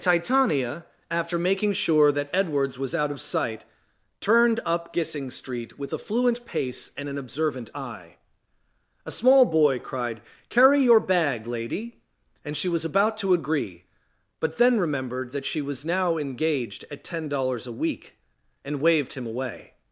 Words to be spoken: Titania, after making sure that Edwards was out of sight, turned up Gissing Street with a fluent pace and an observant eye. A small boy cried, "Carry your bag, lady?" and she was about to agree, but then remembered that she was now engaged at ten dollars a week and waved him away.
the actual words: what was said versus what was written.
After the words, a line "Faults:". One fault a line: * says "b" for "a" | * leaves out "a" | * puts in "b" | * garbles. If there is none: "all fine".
Titania, after making sure that Edwards was out of sight, turned up Gissing Street with a fluent pace and an observant eye. A small boy cried, "Carry your bag, lady?" and she was about to agree, but then remembered that she was now engaged at ten dollars a week and waved him away.
Faults:
all fine